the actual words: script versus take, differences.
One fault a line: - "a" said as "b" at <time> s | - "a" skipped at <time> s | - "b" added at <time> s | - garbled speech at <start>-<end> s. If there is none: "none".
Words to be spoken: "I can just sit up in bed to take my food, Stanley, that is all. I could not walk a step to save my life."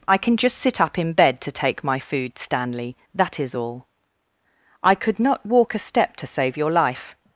- "my" said as "your" at 6.6 s